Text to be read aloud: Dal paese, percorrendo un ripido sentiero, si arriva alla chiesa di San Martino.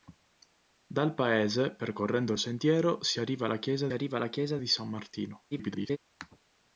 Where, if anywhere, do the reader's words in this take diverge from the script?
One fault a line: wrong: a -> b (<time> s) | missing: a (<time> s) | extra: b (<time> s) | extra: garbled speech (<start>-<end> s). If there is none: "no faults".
missing: ripido (2.4 s)
extra: arriva alla chiesa (3.9 s)
extra: garbled speech (5.5-6.0 s)